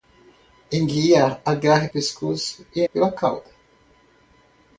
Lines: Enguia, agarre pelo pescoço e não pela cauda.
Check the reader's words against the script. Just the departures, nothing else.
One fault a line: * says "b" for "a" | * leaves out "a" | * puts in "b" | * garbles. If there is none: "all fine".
* leaves out "pelo"
* leaves out "não"